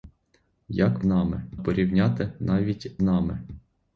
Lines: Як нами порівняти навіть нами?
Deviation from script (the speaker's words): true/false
false